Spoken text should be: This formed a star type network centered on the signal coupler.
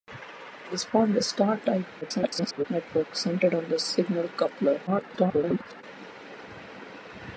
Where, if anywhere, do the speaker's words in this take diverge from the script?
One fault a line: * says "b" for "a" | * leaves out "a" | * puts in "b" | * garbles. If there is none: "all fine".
* garbles
* garbles